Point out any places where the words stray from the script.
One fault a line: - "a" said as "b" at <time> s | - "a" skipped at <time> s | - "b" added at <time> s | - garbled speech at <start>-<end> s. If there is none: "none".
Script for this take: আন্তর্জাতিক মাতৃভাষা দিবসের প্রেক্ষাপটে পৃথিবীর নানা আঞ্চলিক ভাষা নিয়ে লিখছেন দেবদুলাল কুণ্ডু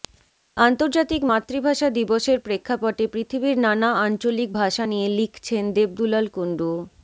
none